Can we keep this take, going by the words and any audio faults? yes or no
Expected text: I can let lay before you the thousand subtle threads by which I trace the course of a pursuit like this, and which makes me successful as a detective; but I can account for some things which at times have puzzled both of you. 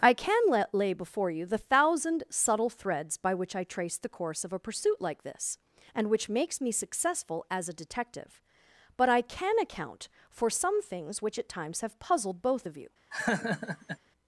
no